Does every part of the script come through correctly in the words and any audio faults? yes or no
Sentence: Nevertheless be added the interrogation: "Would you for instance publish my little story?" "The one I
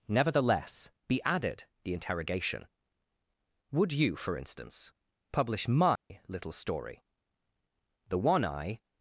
no